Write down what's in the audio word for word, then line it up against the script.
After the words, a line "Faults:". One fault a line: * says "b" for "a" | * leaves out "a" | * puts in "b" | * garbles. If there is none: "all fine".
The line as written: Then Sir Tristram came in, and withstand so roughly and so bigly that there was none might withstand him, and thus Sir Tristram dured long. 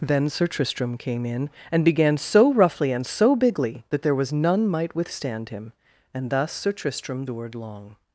Then Sir Tristram came in, and began so roughly and so bigly that there was none might withstand him, and thus Sir Tristram dured long.
Faults:
* says "began" for "withstand"